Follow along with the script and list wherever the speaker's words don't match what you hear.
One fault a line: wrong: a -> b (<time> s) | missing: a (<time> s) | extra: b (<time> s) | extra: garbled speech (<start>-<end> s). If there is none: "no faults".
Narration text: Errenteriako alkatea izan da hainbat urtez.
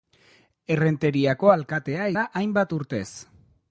missing: izan (2.1 s)